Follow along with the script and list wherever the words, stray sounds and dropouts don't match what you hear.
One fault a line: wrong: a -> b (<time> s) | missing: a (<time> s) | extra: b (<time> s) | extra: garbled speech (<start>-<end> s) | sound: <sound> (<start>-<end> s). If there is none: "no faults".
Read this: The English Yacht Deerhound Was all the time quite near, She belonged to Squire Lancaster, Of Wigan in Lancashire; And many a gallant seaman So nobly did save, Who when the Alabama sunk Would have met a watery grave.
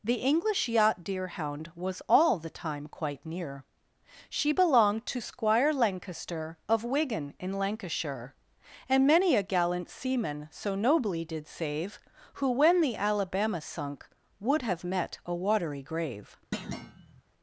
sound: thud (16.5-17.2 s)